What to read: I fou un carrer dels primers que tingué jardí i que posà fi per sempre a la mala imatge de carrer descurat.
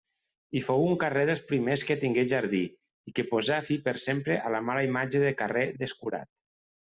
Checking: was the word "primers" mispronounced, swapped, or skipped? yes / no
no